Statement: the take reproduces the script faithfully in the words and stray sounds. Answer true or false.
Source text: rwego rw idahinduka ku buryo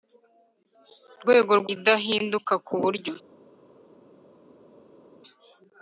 true